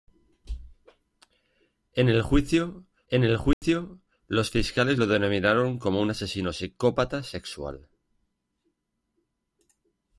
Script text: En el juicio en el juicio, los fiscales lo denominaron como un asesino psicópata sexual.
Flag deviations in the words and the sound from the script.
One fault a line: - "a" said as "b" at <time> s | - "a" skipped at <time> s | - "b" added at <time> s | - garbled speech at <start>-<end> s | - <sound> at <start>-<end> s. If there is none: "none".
- dropout at 3.5-3.6 s